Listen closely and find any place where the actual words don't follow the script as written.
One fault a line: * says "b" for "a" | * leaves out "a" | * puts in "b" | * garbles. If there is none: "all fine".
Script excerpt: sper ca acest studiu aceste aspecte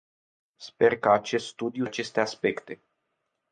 all fine